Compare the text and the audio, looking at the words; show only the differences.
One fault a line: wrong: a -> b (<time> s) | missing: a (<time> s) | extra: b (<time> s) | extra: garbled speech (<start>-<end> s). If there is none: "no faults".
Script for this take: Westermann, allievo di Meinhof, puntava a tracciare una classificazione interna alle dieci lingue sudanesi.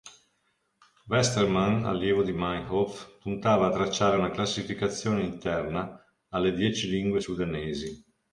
no faults